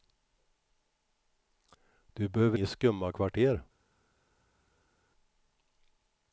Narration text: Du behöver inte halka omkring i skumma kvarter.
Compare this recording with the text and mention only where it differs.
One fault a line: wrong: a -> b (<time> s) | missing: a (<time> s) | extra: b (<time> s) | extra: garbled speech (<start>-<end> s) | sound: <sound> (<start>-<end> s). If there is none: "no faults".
missing: inte halka omkring (2.6 s)